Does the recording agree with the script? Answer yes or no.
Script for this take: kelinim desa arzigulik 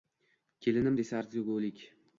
yes